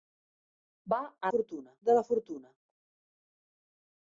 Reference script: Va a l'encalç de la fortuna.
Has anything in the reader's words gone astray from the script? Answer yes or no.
yes